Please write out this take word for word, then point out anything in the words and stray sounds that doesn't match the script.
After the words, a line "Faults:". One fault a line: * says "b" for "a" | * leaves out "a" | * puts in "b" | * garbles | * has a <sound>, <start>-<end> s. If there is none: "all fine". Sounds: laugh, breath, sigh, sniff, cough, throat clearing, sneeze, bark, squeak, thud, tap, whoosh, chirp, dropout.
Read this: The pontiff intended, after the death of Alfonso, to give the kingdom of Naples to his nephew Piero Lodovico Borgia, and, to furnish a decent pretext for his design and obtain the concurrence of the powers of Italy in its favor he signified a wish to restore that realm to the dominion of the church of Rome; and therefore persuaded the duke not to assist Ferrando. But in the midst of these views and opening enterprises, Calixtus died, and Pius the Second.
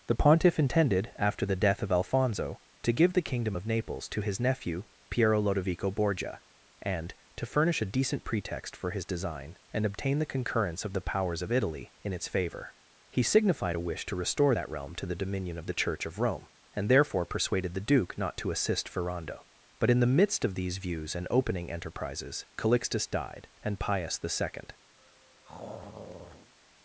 The pontiff intended, after the death of Alfonso, to give the kingdom of Naples to his nephew Piero Lodovico Borgia, and, to furnish a decent pretext for his design and obtain the concurrence of the powers of Italy in its favor he signified a wish to restore that realm to the dominion of the church of Rome; and therefore persuaded the duke not to assist Ferrando. But in the midst of these views and opening enterprises, Calixtus died, and Pius the Second.
Faults:
* has a throat clearing, 25.0-26.5 s